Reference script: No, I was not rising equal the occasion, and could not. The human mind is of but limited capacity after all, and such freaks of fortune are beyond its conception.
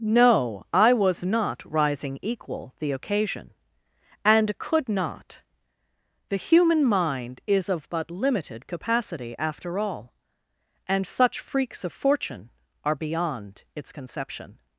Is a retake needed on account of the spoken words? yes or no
no